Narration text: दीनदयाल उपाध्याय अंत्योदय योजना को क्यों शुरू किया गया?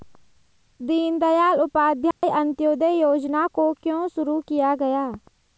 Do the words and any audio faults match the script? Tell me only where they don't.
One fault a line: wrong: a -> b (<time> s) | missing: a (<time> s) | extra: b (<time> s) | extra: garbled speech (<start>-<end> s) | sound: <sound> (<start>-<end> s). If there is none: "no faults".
sound: dropout (2.1-2.2 s)